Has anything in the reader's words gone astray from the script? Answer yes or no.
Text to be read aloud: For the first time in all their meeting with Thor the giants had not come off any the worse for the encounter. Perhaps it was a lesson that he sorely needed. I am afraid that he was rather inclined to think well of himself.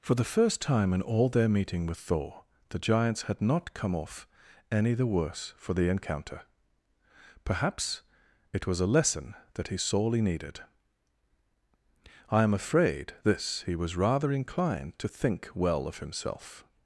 yes